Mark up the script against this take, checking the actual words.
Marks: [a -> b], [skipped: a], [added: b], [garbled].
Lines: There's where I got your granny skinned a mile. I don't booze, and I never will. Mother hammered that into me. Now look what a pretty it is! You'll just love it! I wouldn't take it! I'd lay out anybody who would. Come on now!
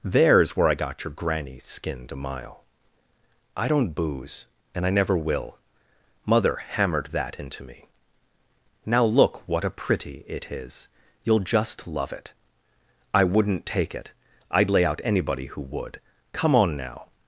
There's where I got your granny skinned a mile. I don't booze, and I never will. Mother hammered that into me. Now look what a pretty it is! You'll just love it! I wouldn't take it! I'd lay out anybody who would. Come on now!